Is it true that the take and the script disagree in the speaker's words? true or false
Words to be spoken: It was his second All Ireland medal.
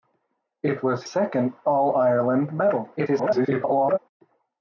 true